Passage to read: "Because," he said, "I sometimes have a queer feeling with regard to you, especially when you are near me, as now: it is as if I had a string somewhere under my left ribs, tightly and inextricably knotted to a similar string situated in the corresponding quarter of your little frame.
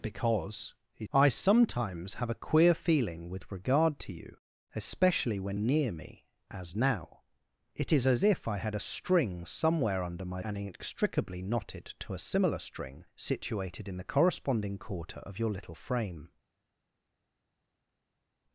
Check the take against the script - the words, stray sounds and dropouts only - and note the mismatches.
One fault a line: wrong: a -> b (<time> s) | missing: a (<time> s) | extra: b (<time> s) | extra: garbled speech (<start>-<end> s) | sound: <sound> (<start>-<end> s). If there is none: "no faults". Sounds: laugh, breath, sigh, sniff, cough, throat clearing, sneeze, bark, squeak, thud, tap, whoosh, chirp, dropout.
missing: said (1.1 s)
missing: you (5.6 s)
missing: left ribs tightly (10.4 s)